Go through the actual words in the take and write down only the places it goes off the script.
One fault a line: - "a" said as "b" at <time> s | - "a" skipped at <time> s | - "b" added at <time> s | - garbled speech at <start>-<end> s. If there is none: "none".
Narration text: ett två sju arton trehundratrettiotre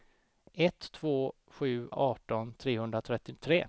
none